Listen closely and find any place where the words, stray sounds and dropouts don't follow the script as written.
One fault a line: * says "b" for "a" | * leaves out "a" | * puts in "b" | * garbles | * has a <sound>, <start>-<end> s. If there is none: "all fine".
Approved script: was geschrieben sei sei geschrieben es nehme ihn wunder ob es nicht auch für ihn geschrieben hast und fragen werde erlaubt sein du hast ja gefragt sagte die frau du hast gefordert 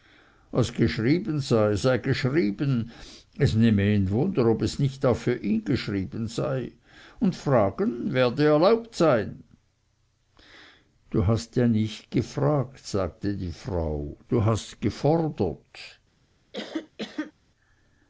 * says "sei" for "hast"
* puts in "nicht"
* has a cough, 16.5-17.3 s